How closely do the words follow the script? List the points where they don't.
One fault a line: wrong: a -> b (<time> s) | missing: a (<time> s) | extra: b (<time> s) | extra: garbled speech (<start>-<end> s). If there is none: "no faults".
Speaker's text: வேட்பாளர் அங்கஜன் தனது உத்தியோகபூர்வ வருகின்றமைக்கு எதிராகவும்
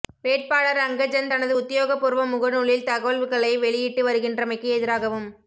extra: முகநூலில் தகவல்களை வெளியிட்டு (2.3 s)